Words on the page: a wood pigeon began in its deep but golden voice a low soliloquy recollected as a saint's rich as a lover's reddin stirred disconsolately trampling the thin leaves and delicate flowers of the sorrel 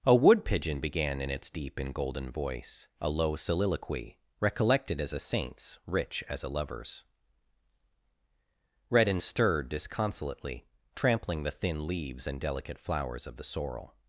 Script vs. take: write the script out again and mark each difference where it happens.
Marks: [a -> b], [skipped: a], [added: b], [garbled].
a wood pigeon began in its deep [but -> and] golden voice a low soliloquy recollected as a saint's rich as a lover's reddin stirred disconsolately trampling the thin leaves and delicate flowers of the sorrel